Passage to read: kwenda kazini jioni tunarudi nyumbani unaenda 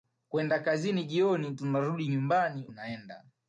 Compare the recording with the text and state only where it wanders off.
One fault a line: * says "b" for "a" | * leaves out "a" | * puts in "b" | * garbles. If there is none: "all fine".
all fine